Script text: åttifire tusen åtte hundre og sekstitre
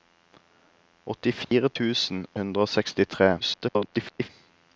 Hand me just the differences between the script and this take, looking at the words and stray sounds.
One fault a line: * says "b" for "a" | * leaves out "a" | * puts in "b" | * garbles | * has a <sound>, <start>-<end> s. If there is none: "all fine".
* has a dropout, 1.4-1.5 s
* leaves out "åtte"
* garbles